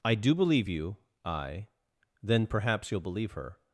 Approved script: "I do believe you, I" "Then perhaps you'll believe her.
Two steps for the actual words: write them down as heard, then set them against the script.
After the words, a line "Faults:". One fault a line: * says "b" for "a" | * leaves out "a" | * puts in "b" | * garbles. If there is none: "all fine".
"I do believe you, I" "Then perhaps you'll believe her.
Faults:
all fine